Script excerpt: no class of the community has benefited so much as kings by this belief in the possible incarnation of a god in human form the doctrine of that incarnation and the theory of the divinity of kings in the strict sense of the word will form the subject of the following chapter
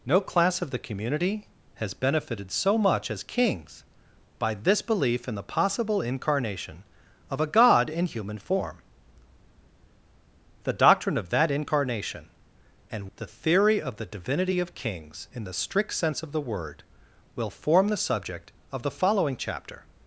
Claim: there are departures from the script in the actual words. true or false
false